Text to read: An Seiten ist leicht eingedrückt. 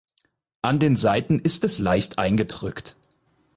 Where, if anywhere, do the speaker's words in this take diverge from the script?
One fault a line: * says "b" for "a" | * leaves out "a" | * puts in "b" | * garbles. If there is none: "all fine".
* puts in "den"
* puts in "es"